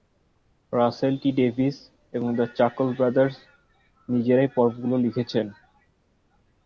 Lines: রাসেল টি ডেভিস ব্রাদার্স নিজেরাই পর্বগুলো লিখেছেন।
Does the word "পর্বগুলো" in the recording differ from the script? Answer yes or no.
no